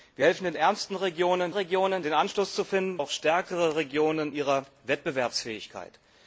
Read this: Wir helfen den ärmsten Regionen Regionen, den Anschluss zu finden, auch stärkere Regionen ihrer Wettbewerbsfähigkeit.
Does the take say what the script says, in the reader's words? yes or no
yes